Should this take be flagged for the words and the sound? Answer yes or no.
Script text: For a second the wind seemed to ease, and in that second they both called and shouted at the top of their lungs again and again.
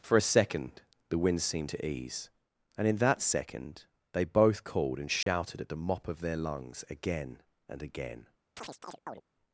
yes